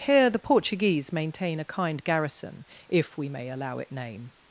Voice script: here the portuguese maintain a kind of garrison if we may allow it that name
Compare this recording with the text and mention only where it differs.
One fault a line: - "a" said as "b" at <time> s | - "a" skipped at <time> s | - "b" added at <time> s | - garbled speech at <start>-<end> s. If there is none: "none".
- "of" skipped at 2.0 s
- "that" skipped at 3.9 s